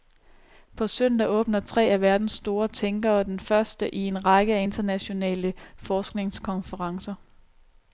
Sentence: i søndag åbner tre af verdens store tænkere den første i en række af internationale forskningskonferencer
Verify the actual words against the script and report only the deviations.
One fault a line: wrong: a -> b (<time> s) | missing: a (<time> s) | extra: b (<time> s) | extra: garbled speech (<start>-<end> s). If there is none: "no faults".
wrong: i -> på (0.8 s)